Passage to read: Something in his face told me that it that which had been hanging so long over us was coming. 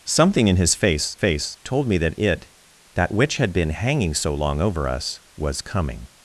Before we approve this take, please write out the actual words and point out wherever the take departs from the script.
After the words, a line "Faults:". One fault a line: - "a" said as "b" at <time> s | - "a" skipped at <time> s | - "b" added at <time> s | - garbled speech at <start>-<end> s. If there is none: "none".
Something in his face face told me that it that which had been hanging so long over us was coming.
Faults:
- "face" added at 1.1 s